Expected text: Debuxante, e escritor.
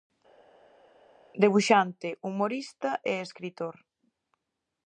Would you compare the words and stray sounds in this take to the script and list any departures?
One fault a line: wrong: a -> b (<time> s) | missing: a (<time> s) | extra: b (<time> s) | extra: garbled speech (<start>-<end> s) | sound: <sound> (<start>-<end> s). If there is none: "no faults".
extra: humorista (2.3 s)